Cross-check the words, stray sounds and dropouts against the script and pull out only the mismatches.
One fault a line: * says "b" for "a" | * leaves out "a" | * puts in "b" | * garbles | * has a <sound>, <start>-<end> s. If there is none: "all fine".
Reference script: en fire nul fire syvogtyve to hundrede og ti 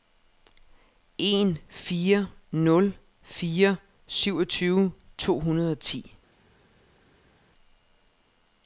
all fine